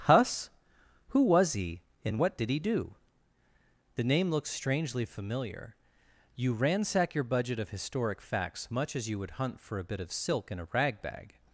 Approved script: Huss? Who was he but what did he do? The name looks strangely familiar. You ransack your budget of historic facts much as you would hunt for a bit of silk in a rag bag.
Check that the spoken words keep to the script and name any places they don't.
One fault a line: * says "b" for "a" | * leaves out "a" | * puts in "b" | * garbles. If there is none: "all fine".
* says "and" for "but"